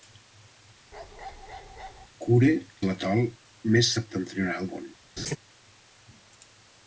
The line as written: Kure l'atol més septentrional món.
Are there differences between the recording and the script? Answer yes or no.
no